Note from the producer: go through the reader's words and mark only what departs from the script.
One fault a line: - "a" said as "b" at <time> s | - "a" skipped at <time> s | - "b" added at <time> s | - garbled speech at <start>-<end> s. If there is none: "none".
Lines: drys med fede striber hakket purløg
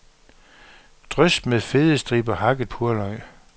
none